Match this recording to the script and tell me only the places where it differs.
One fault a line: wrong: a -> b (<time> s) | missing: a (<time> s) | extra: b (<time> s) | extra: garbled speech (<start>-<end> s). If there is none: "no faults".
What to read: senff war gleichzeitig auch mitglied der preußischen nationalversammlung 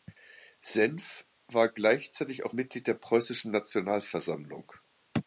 no faults